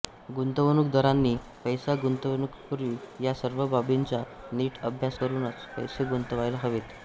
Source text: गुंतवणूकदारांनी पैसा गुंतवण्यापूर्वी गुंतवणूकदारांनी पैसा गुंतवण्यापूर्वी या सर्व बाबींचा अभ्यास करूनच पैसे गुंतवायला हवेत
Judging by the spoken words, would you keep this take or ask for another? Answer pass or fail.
fail